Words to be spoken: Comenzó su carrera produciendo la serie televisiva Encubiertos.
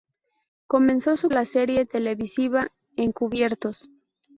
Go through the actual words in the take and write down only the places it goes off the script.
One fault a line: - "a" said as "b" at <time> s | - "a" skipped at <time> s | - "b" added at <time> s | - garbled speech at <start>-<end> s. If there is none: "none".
- "carrera produciendo" skipped at 1.3 s